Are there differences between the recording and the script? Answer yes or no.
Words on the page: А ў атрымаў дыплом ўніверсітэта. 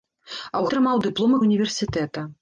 no